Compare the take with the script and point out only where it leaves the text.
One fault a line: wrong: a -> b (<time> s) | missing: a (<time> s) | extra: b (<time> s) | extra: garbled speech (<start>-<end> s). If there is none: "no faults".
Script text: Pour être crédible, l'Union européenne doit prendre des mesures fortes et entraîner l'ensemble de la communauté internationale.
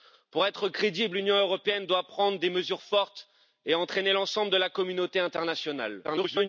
extra: garbled speech (6.0-6.5 s)